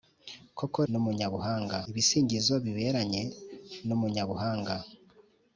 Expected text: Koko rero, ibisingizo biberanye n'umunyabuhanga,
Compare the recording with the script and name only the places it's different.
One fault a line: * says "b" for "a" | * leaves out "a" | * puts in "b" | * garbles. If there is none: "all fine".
* says "n'umunyabuhanga" for "rero"